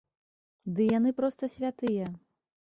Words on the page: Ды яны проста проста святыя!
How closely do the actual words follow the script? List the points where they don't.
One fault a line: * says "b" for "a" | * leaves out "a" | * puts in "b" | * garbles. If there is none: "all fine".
* leaves out "проста"